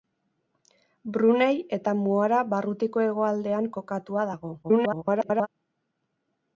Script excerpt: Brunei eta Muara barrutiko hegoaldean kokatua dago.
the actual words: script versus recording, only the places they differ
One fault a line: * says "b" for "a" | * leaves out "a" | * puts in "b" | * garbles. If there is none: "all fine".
* garbles